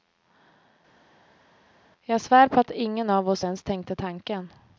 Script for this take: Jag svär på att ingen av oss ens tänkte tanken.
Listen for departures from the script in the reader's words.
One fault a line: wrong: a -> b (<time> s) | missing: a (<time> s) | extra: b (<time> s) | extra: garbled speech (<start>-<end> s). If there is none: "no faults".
no faults